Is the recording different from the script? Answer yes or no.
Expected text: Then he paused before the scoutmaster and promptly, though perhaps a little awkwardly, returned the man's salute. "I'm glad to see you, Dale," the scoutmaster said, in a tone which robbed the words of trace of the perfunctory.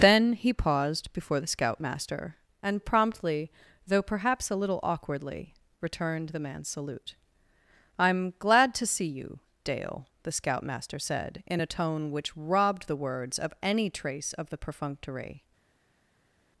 yes